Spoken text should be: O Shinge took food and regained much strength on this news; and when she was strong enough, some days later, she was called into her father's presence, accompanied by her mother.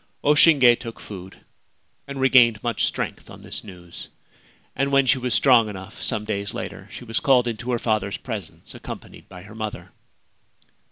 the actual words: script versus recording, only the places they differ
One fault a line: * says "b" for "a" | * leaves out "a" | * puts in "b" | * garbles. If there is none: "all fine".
all fine